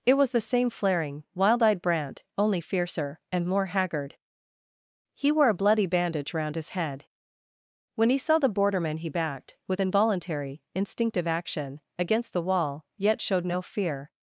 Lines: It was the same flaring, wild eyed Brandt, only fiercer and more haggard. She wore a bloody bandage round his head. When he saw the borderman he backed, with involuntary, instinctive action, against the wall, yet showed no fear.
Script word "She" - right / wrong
wrong